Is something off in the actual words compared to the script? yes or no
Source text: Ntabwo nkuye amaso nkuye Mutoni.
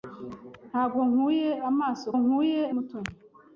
no